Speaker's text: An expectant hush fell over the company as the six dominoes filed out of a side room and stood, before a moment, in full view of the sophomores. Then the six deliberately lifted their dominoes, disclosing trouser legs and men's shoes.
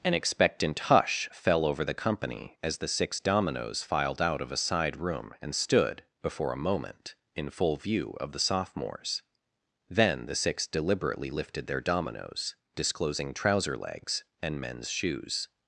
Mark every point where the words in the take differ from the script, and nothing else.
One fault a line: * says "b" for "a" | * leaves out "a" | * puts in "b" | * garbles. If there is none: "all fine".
all fine